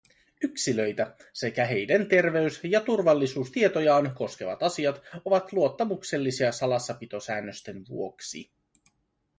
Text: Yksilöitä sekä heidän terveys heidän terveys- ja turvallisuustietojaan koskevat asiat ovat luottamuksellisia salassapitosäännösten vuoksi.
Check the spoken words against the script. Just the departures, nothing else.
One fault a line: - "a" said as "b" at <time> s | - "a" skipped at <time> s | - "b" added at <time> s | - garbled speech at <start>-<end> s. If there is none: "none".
- "heidän terveys" skipped at 2.6 s